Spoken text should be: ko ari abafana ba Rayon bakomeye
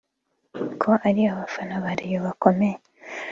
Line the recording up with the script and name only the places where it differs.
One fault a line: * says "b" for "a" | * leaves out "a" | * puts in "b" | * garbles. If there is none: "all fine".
all fine